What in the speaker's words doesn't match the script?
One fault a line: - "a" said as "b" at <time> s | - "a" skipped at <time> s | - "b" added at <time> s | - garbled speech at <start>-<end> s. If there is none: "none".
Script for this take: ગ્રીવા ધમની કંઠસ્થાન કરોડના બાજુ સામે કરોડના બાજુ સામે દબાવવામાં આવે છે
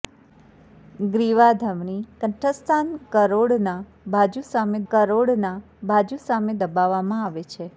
none